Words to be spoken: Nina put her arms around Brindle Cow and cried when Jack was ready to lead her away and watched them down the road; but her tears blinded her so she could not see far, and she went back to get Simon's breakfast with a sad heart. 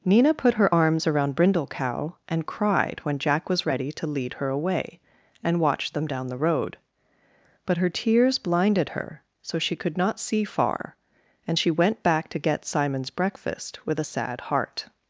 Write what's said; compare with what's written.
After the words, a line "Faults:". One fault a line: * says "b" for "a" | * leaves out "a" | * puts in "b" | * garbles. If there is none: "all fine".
Nina put her arms around Brindle Cow and cried when Jack was ready to lead her away and watched them down the road; but her tears blinded her so she could not see far, and she went back to get Simon's breakfast with a sad heart.
Faults:
all fine